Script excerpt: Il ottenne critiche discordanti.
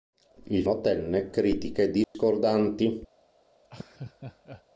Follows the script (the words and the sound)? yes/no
no